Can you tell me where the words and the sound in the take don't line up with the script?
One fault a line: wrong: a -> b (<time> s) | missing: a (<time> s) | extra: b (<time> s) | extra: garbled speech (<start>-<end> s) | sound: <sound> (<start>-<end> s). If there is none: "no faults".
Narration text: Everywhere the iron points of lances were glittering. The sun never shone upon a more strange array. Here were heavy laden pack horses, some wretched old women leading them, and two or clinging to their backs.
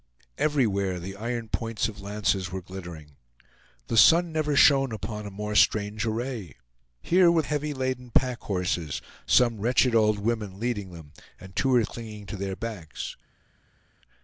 no faults